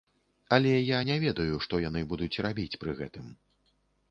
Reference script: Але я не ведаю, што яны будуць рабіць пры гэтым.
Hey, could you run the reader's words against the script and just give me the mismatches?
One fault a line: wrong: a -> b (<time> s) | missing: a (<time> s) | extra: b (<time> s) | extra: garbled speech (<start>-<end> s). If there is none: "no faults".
no faults